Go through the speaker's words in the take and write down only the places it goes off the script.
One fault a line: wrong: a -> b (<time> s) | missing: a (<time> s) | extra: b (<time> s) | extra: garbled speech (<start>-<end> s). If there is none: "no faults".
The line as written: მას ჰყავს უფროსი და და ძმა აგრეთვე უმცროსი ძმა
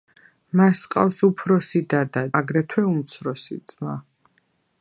missing: ძმა (2.2 s)